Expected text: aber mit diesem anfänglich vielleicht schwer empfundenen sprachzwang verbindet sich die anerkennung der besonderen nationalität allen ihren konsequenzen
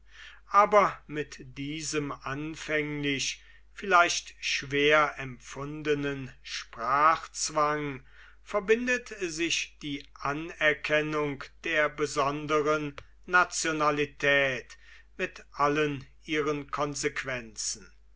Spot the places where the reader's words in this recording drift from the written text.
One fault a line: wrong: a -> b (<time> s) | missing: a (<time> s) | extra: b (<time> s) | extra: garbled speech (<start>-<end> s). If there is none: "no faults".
extra: mit (15.2 s)